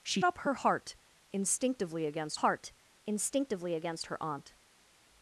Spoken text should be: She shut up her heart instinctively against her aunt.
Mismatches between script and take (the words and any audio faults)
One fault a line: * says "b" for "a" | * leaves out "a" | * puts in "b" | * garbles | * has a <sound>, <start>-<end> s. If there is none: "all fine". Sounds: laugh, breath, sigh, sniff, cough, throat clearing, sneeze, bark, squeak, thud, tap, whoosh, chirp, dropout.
* leaves out "shut"
* puts in "heart instinctively against"